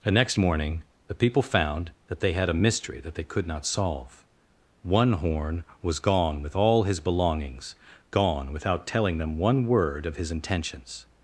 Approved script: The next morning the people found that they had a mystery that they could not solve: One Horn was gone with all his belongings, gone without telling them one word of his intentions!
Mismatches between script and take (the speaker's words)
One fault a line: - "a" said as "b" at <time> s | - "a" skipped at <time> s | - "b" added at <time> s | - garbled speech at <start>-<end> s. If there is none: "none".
none